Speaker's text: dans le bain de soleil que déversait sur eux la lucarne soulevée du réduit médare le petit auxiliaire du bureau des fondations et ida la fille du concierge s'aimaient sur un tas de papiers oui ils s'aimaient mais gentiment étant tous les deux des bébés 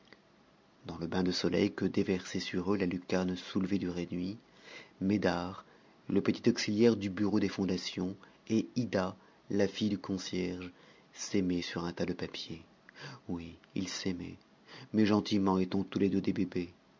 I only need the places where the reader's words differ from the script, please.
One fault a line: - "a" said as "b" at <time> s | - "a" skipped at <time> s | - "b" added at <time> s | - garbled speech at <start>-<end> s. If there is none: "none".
none